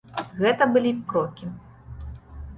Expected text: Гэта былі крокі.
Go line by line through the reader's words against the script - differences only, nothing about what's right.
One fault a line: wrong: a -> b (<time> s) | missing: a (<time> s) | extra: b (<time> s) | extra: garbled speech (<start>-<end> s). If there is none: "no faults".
no faults